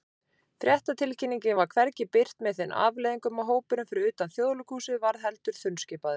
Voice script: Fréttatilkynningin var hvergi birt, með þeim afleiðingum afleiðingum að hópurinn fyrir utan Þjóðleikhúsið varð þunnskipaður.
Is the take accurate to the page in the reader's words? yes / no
no